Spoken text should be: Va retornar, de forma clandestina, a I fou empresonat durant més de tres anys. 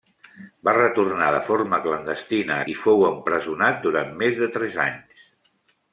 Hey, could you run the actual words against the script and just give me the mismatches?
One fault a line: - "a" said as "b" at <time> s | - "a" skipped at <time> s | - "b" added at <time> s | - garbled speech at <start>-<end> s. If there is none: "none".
none